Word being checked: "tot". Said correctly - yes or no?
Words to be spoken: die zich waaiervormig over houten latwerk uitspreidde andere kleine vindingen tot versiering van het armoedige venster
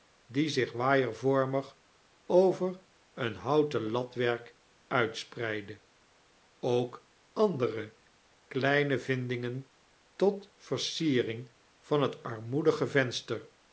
yes